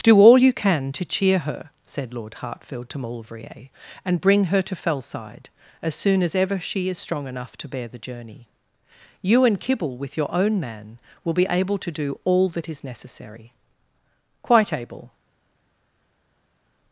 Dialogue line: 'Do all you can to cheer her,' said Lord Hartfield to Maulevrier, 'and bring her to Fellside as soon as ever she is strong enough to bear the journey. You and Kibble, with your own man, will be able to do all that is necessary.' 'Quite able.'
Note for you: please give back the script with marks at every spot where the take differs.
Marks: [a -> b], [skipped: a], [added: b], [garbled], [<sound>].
'Do all you can to cheer her,' said Lord Hartfield to Maulevrier, 'and bring her to Fellside as soon as ever she is strong enough to bear the journey. You and Kibble, with your own man, will be able to do all that is necessary.' 'Quite able.'